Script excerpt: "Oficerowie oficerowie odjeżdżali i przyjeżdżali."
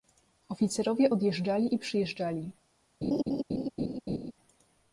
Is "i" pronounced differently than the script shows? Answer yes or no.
no